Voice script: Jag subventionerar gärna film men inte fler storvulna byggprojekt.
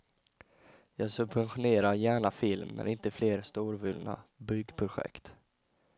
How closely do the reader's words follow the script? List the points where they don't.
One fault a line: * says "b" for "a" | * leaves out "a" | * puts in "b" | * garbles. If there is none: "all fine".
all fine